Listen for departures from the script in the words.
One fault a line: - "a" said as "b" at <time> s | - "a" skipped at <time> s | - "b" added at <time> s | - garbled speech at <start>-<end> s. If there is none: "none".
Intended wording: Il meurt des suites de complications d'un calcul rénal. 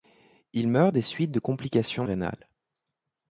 - "d'un calcul" skipped at 2.1 s